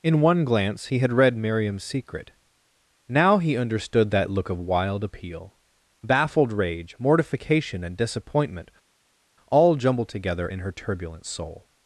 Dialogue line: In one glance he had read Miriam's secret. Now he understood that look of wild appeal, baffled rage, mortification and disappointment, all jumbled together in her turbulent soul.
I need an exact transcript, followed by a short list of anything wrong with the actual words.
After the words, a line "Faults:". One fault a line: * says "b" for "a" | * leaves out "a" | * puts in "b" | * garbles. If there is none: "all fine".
In one glance he had read Miriam's secret. Now he understood that look of wild appeal, baffled rage, mortification and disappointment, all jumbled together in her turbulent soul.
Faults:
all fine